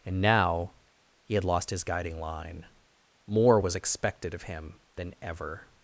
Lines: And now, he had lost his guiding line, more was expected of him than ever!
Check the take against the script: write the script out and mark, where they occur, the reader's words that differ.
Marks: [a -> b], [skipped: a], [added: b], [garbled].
And now, he had lost his guiding line, more was expected of him than ever!